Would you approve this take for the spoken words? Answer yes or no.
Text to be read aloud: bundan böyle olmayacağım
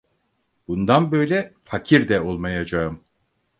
no